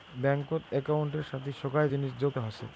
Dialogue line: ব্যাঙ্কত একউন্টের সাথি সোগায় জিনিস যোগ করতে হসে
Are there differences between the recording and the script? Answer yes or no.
yes